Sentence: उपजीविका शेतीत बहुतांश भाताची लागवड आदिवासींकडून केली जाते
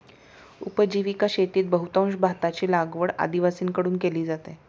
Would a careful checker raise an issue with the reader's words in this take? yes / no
no